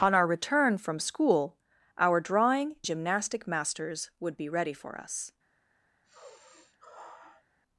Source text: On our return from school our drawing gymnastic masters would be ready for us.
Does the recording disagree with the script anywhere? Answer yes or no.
no